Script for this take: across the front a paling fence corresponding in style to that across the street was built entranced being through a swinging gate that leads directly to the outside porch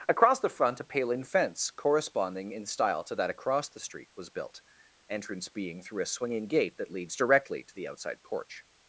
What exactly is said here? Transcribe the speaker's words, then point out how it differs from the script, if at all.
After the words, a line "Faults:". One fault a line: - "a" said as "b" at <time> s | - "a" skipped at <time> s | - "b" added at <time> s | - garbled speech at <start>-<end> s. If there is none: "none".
across the front a paling fence corresponding in style to that across the street was built entrance being through a swinging gate that leads directly to the outside porch
Faults:
- "entranced" said as "entrance" at 5.1 s